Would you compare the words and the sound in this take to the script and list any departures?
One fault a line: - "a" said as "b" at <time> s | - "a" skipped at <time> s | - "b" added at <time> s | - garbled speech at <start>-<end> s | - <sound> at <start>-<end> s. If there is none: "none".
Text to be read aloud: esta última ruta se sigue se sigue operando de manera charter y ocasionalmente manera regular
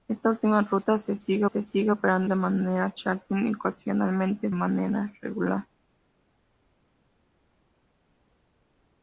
none